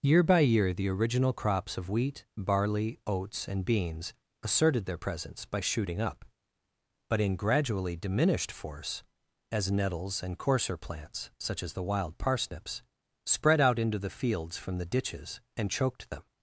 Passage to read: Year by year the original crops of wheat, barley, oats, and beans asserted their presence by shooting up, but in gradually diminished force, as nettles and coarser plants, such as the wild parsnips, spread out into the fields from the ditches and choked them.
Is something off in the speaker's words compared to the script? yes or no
no